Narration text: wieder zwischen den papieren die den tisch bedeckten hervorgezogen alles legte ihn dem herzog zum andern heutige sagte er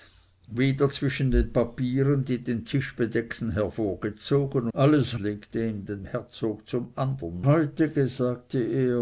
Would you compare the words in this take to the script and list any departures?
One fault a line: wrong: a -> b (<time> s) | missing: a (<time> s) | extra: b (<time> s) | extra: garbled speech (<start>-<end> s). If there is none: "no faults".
no faults